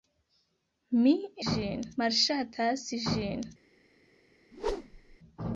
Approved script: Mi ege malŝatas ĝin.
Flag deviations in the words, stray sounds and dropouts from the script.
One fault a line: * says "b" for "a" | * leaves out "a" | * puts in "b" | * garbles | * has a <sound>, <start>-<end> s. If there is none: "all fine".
* says "ĝin" for "ege"
* has a whoosh, 4.5-5.2 s